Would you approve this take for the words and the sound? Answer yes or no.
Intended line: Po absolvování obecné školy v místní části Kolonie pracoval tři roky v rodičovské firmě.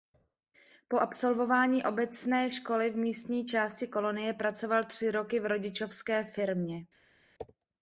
yes